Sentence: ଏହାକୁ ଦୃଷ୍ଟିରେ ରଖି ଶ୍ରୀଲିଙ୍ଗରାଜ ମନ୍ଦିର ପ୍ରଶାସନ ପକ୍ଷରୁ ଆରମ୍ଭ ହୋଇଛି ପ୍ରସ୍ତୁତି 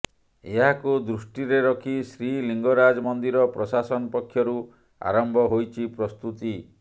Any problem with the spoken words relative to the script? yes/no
no